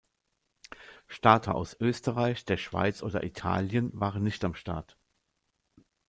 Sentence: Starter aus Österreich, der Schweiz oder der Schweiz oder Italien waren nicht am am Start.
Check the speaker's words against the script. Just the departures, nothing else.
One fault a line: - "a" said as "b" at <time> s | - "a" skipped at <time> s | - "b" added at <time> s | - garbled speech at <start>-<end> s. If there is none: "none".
- "der Schweiz oder" skipped at 3.2 s
- "am" skipped at 4.5 s